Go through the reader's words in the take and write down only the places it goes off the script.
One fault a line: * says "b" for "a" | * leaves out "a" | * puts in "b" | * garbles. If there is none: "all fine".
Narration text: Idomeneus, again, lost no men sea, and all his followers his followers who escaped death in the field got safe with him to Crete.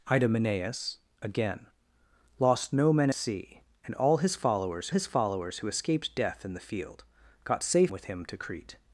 all fine